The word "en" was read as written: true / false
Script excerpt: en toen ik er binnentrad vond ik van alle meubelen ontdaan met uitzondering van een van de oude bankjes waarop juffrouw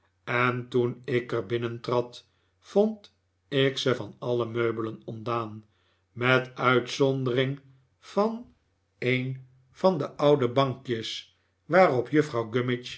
true